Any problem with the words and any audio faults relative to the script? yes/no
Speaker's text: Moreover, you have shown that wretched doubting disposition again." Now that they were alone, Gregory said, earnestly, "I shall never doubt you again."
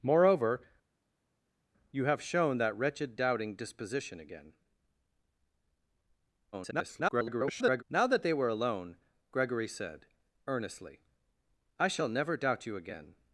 yes